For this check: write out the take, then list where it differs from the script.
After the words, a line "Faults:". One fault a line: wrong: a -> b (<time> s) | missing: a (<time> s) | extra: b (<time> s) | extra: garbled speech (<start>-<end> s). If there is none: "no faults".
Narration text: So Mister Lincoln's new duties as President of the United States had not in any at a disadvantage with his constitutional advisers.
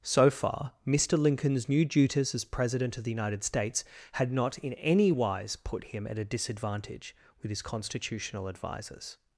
So far, Mister Lincoln's new duties as President of the United States had not in any wise put him at a disadvantage with his constitutional advisers.
Faults:
extra: far (0.3 s)
extra: wise put him (5.1 s)